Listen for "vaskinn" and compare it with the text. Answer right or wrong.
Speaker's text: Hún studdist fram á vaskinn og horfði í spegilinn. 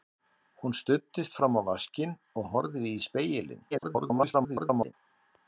right